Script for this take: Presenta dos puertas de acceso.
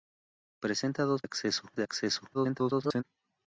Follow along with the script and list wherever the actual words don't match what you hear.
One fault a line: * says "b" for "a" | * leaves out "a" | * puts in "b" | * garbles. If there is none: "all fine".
* says "acceso" for "puertas"
* garbles